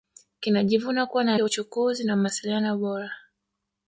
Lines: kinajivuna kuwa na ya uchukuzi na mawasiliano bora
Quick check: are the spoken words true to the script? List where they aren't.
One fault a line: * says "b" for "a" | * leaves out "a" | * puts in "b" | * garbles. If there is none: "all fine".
all fine